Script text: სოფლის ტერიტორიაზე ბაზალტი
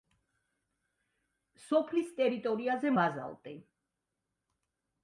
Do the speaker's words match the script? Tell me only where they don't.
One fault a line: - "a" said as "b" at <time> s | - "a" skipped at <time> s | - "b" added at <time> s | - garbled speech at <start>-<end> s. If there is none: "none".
none